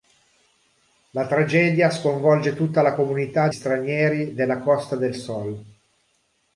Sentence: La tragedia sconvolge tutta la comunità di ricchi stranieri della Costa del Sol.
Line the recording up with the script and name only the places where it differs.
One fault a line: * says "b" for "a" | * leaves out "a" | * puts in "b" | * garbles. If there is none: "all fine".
* leaves out "di ricchi"